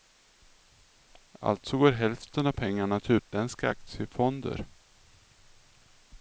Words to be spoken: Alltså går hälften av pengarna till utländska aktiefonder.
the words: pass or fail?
pass